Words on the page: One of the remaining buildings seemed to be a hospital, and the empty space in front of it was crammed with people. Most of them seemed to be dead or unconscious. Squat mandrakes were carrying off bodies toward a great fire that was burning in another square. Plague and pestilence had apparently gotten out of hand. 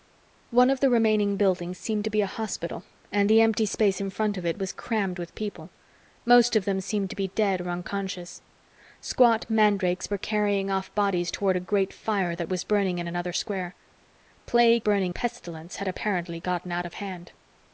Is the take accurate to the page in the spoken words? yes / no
no